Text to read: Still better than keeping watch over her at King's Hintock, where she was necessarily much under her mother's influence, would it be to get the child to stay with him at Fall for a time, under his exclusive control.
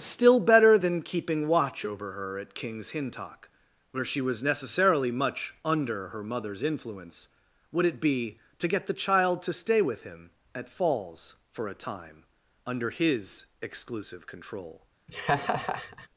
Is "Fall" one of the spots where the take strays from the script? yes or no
yes